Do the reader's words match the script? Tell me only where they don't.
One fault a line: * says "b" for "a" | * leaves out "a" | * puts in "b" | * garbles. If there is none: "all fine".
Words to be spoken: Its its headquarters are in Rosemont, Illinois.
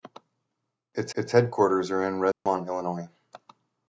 all fine